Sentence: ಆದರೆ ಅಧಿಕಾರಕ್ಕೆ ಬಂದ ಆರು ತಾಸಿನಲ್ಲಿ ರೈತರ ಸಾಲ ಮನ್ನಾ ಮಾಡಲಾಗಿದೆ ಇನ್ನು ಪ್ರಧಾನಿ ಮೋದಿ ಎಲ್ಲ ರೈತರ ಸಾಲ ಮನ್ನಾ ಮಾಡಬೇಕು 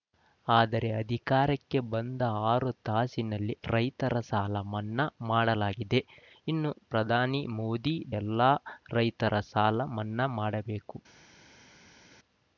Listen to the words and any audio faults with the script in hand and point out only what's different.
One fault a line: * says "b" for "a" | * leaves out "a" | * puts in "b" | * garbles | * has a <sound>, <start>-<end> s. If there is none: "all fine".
all fine